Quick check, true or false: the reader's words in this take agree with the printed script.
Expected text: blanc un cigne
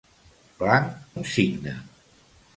true